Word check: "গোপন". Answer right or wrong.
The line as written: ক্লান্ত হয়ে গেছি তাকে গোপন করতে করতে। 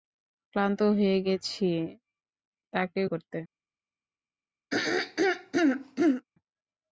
wrong